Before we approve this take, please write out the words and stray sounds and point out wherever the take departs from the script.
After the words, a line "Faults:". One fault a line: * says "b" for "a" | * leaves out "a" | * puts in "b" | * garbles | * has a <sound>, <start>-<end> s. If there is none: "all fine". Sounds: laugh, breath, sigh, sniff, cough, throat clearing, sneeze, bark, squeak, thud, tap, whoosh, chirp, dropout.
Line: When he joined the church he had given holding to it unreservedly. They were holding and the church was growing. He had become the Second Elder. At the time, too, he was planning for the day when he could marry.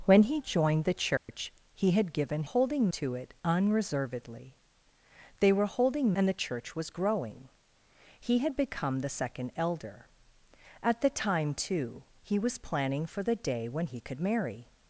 When he joined the church he had given holding to it unreservedly. They were holding and the church was growing. He had become the Second Elder. At the time, too, he was planning for the day when he could marry.
Faults:
* has a dropout, 1.2-1.3 s